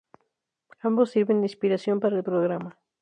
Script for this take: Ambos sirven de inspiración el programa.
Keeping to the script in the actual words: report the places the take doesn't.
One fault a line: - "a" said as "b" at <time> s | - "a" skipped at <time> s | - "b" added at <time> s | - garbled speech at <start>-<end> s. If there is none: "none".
- "para" added at 2.0 s